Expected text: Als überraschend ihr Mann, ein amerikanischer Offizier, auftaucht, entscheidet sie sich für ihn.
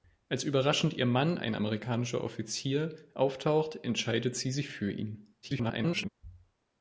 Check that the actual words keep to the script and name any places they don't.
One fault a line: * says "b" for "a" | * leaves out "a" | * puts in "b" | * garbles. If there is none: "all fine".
* garbles